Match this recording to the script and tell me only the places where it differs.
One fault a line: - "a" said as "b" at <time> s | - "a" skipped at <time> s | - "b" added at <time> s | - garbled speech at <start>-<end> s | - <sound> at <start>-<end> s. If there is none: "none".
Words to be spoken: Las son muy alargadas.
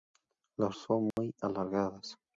- dropout at 1.1-1.2 s